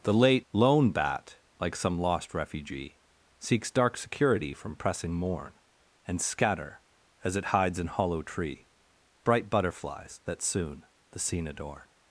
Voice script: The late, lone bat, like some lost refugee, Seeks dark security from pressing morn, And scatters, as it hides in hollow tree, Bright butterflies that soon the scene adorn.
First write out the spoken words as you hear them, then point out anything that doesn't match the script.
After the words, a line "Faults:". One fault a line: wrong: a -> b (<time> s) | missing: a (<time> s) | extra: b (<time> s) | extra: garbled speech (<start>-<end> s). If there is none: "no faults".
The late, lone bat, like some lost refugee, Seeks dark security from pressing morn, And scatter, as it hides in hollow tree, Bright butterflies that soon the scene adorn.
Faults:
wrong: scatters -> scatter (6.2 s)